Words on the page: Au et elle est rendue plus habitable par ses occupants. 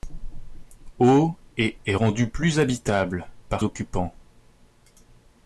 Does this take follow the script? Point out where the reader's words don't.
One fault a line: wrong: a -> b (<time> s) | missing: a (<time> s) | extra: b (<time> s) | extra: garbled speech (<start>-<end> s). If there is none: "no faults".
missing: elle (1.8 s)
missing: ses (3.6 s)